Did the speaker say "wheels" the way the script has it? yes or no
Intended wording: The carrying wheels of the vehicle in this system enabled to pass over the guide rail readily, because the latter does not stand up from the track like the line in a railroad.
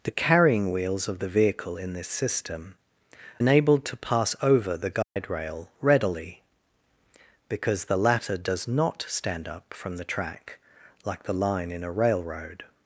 yes